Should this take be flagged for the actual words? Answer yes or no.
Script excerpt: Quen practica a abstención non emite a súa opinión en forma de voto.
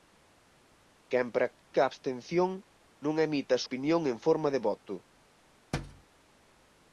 yes